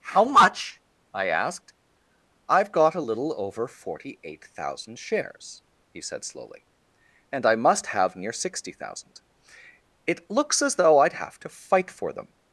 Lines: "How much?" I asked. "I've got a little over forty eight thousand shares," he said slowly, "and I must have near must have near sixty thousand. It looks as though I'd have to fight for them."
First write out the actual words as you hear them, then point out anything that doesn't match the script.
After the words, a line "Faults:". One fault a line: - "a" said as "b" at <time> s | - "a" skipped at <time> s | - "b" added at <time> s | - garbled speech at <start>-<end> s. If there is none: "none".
"How much?" I asked. "I've got a little over forty eight thousand shares," he said slowly, "and I must have near sixty thousand. It looks as though I'd have to fight for them."
Faults:
- "must have near" skipped at 8.3 s